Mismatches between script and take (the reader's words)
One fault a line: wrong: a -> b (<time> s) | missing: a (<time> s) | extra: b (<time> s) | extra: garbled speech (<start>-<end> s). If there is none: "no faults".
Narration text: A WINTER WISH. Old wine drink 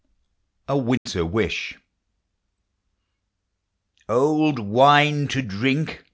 extra: to (5.3 s)